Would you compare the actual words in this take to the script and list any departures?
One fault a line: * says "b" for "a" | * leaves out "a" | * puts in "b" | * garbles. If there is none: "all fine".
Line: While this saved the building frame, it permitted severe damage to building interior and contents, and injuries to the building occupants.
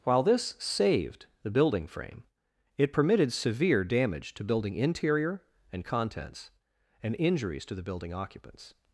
all fine